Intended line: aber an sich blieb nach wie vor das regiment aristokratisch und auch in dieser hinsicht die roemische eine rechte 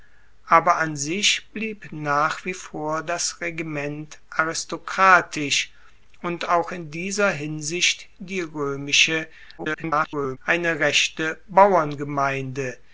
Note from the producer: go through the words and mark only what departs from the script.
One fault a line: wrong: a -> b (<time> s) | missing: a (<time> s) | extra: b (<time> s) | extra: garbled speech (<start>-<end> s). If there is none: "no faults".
extra: garbled speech (9.6-10.4 s)